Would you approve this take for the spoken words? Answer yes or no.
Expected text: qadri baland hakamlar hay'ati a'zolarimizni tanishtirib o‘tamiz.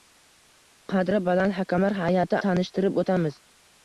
no